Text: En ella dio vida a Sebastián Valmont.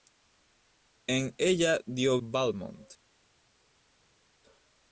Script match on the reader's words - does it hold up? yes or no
no